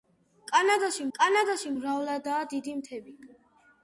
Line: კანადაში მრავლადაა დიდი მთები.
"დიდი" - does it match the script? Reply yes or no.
yes